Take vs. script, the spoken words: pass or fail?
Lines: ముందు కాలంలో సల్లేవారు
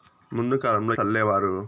pass